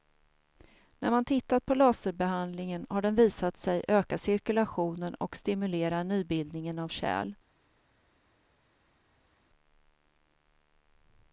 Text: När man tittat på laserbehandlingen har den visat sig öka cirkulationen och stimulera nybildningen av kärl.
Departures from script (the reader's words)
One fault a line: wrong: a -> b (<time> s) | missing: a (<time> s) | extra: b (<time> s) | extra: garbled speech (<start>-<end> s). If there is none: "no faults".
no faults